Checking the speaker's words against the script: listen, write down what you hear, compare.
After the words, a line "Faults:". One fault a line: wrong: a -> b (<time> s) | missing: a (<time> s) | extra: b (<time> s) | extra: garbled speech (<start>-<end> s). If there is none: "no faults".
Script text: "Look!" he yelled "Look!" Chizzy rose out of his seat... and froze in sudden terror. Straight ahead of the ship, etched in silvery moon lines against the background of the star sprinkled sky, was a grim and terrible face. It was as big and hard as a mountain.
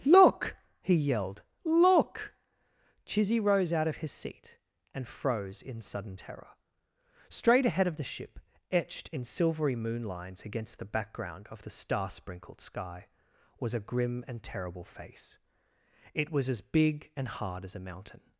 "Look!" he yelled "Look!" Chizzy rose out of his seat... and froze in sudden terror. Straight ahead of the ship, etched in silvery moon lines against the background of the star sprinkled sky, was a grim and terrible face. It was as big and hard as a mountain.
Faults:
no faults